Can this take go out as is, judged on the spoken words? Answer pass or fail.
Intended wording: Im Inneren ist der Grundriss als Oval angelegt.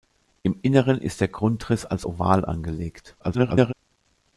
fail